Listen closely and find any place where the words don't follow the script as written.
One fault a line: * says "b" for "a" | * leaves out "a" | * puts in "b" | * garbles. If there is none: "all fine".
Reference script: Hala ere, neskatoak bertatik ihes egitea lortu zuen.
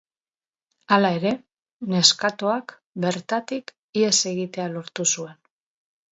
all fine